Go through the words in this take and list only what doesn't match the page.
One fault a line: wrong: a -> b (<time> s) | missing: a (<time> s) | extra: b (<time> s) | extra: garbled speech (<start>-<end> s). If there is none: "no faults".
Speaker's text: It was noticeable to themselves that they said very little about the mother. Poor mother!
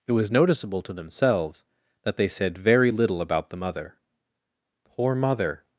no faults